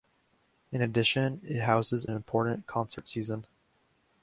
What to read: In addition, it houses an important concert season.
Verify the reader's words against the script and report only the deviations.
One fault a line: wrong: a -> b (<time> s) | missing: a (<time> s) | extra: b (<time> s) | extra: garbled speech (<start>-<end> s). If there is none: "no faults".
missing: an (2.0 s)